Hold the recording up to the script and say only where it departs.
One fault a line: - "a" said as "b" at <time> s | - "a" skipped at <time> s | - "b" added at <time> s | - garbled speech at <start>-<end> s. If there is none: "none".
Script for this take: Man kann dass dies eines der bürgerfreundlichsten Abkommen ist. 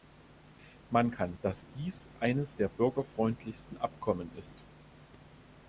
none